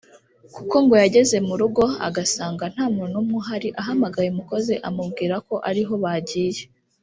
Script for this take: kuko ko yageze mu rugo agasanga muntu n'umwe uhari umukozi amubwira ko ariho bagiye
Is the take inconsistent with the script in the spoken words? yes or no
yes